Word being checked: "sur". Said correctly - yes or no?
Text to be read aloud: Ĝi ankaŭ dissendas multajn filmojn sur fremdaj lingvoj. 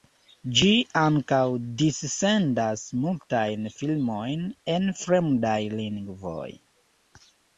no